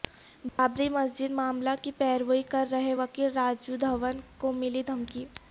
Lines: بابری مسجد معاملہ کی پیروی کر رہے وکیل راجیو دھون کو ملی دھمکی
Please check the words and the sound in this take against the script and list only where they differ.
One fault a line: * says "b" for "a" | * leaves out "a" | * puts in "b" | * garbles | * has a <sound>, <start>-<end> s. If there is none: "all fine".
* has a dropout, 0.5-0.6 s